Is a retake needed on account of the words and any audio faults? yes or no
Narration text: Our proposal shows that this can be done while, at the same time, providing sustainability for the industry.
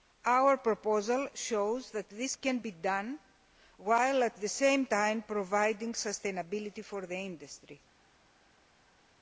no